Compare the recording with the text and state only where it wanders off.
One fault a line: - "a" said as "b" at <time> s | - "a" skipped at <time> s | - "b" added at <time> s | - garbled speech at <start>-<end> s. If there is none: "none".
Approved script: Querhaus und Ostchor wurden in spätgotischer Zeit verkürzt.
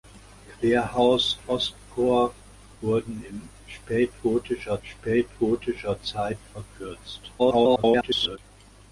- "und" skipped at 1.4 s
- "spätgotischer" added at 4.8 s
- garbled speech at 7.4-8.4 s